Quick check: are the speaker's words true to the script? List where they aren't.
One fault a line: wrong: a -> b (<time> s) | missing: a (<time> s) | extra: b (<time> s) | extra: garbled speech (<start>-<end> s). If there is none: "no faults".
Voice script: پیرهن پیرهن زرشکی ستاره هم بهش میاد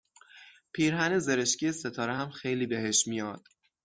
missing: پیرهن (1.2 s)
extra: خیلی (2.3 s)